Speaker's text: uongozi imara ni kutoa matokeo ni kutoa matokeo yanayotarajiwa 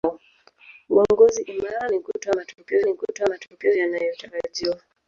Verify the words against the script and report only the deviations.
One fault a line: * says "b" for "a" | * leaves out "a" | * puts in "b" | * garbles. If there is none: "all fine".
all fine